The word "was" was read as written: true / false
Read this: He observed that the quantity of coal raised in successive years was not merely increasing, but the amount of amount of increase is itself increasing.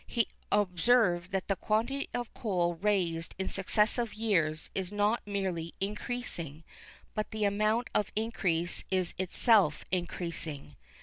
false